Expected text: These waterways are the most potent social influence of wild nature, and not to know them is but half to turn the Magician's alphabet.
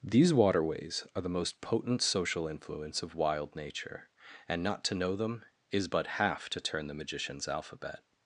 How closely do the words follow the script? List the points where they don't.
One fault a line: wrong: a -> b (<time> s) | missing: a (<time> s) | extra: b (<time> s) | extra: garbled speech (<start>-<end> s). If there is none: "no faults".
no faults